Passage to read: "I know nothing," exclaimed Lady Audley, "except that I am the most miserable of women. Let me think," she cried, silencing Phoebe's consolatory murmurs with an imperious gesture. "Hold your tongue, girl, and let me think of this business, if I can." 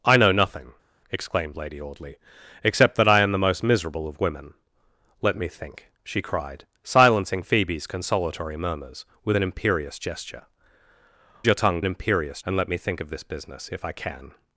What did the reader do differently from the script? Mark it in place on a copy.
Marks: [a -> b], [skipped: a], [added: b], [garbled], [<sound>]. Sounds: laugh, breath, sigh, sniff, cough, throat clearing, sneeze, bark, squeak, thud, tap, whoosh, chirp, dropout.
"I know nothing," exclaimed Lady Audley, "except that I am the most miserable of women. Let me think," she cried, silencing Phoebe's consolatory murmurs with an imperious gesture. [skipped: "Hold] your tongue, [girl, -> imperious] and let me think of this business, if I can."